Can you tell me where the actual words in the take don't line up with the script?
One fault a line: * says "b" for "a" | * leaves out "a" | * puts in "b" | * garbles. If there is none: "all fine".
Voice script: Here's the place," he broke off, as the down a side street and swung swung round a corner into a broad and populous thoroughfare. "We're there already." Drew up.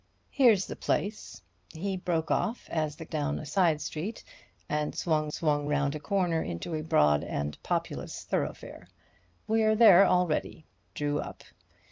all fine